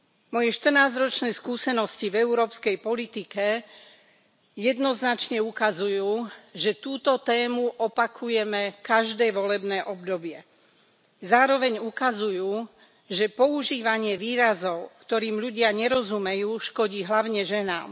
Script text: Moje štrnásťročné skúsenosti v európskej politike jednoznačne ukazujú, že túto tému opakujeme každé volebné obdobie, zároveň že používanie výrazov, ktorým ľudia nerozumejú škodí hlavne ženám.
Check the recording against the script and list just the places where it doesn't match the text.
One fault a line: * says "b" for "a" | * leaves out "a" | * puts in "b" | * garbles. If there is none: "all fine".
* puts in "ukazujú"